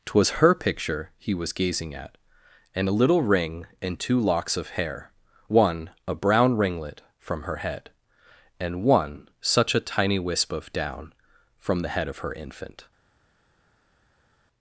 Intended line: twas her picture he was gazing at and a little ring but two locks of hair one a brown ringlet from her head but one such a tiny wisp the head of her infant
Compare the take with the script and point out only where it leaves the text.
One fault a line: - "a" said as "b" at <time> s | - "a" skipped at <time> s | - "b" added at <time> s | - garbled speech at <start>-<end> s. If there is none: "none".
- "but" said as "and" at 3.8 s
- "but" said as "and" at 8.6 s
- "of down from" added at 10.5 s